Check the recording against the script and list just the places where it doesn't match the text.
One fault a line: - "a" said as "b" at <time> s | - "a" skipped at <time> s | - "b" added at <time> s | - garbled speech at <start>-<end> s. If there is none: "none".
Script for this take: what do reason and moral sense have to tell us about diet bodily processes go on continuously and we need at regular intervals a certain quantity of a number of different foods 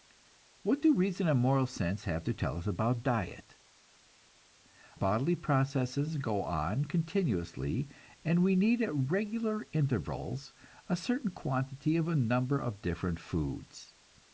none